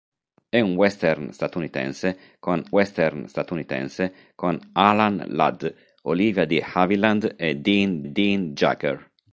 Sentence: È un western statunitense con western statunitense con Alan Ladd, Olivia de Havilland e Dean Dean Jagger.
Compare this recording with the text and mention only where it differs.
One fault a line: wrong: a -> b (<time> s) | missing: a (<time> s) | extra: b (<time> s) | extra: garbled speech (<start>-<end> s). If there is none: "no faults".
no faults